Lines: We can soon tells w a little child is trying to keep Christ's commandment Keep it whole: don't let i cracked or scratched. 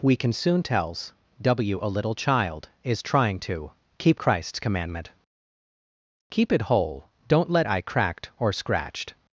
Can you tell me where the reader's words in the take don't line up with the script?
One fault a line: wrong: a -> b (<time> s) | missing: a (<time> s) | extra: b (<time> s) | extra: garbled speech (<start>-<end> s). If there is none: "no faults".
no faults